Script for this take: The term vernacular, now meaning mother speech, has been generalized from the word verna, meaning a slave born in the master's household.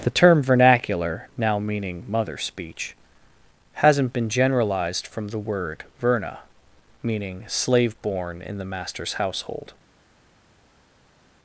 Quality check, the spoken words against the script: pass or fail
fail